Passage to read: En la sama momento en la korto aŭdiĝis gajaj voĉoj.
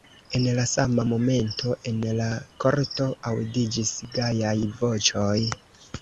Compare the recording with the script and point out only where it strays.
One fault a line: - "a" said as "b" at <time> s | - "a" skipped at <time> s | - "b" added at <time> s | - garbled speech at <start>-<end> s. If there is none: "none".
none